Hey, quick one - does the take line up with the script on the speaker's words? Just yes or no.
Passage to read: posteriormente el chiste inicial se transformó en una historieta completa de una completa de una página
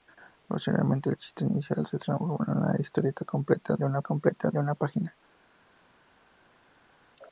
yes